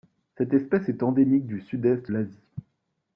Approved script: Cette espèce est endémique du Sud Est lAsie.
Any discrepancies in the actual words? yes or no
no